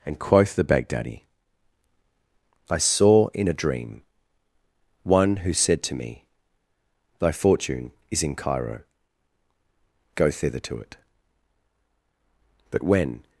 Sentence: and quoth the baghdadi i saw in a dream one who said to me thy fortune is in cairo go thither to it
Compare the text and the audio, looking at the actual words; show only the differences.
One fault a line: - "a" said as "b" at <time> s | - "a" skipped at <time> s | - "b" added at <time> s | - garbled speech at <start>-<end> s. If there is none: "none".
- "but when" added at 12.7 s